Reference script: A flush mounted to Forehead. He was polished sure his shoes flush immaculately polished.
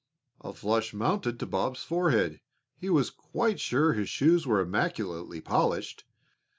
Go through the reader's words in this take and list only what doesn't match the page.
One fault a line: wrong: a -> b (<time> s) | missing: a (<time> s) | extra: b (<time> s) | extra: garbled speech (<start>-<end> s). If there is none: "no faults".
extra: Bob's (1.4 s)
wrong: polished -> quite (3.1 s)
wrong: flush -> were (4.5 s)